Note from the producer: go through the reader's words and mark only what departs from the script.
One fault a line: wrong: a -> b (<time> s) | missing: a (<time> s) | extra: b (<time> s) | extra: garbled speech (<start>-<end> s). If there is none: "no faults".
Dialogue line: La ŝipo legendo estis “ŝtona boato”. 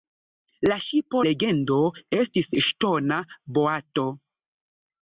no faults